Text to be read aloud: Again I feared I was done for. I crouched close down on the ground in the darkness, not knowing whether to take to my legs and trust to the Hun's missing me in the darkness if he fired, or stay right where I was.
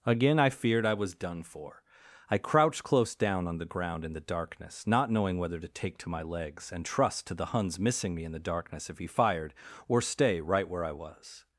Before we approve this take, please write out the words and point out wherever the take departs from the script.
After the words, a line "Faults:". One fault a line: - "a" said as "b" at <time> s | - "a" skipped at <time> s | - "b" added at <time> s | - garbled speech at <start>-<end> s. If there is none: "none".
Again I feared I was done for. I crouched close down on the ground in the darkness, not knowing whether to take to my legs and trust to the Hun's missing me in the darkness if he fired, or stay right where I was.
Faults:
none